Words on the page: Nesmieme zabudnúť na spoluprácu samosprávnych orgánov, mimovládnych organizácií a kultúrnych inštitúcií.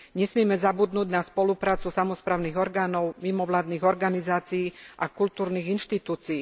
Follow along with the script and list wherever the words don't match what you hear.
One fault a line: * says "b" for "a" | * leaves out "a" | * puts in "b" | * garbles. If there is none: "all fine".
all fine